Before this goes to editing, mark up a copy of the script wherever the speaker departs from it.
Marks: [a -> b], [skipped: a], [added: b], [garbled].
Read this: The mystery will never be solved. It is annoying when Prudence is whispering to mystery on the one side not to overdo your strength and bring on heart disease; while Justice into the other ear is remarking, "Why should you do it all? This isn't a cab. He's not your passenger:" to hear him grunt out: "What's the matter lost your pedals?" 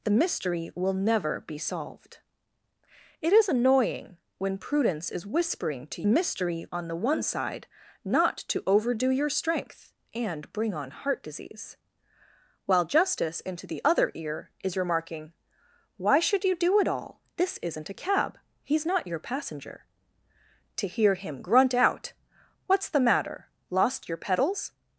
The mystery will never be solved. It is annoying when Prudence is whispering to mystery on the one side not to overdo your strength and bring on heart disease; while Justice into the other ear is remarking, "Why should you do it all? This isn't a cab. He's not your passenger:" to hear him grunt out: "What's the matter lost your pedals?"